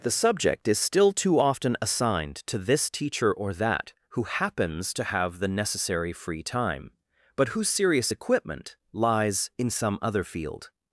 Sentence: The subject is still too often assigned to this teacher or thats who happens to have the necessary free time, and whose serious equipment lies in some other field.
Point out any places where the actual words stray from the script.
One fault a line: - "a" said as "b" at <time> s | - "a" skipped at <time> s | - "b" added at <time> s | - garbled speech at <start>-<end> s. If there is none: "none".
- "thats" said as "that" at 3.5 s
- "and" said as "but" at 7.3 s